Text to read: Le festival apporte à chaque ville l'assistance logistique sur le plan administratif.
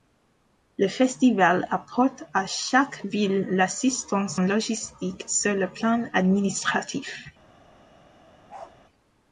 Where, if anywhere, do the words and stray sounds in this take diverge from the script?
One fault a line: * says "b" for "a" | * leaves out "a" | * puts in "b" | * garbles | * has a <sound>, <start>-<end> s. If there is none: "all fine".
* has a bark, 8.5-8.7 s